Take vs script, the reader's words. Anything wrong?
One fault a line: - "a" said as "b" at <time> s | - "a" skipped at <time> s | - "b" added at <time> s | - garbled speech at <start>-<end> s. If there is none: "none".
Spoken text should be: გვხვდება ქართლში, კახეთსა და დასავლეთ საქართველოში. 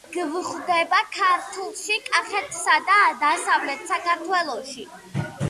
none